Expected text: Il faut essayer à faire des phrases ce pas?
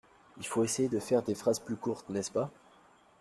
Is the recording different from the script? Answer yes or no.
yes